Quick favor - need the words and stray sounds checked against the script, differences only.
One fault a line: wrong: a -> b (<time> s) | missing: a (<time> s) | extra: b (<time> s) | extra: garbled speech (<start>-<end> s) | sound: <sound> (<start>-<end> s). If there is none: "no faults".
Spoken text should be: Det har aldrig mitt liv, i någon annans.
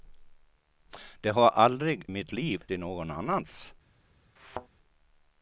sound: thud (4.4-4.7 s)